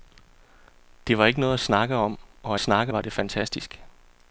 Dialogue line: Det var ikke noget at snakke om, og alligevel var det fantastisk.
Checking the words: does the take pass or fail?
fail